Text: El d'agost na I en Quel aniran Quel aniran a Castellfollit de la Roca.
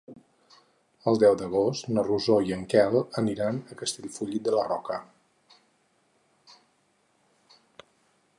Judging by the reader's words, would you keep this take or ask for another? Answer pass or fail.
fail